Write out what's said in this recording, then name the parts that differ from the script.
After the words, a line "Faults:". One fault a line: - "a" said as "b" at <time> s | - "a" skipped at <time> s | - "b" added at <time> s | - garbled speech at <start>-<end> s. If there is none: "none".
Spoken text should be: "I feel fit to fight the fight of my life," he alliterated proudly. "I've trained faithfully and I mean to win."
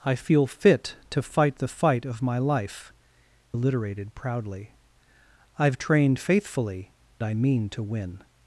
"I feel fit to fight the fight of my life," alliterated proudly. "I've trained faithfully I mean to win."
Faults:
- "he" skipped at 2.9 s
- "and" skipped at 6.9 s